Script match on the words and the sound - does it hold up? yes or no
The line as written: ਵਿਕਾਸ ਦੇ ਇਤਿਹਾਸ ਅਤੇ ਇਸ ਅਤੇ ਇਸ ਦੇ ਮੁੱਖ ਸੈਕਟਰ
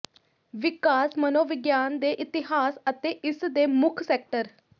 no